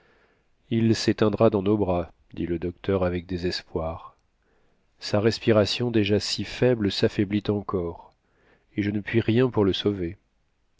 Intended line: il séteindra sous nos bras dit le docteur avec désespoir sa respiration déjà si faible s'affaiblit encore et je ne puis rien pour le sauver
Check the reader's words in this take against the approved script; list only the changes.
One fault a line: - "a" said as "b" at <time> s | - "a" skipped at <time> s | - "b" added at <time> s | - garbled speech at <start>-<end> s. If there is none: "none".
- "sous" said as "dans" at 1.5 s